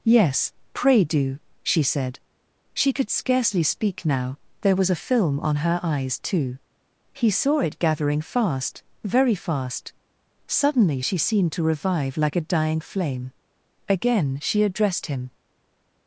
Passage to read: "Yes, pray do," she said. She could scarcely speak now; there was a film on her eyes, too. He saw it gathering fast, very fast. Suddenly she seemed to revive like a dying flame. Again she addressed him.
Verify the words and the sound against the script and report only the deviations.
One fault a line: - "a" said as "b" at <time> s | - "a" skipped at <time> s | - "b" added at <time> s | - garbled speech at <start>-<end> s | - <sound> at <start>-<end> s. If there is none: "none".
none